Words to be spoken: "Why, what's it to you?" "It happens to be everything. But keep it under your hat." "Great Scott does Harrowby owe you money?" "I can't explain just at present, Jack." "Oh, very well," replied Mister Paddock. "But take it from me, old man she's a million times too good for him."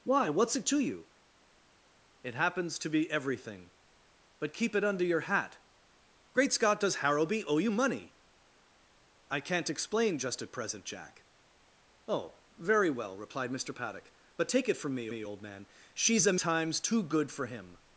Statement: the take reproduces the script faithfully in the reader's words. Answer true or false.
false